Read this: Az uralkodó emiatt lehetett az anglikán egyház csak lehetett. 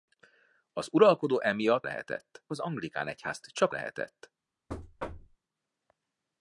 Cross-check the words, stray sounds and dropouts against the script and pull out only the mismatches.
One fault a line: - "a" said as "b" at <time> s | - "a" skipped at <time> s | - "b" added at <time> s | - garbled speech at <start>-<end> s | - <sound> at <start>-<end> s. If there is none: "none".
- thud at 4.7-5.4 s